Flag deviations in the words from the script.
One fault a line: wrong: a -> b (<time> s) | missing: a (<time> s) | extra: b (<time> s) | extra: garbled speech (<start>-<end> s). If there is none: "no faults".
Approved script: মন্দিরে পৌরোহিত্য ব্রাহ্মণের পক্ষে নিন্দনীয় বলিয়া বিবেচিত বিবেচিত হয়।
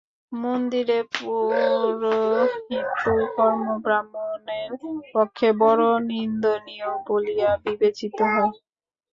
extra: কর্ম (3.3 s)
extra: বড় (5.6 s)
missing: বিবেচিত (8.2 s)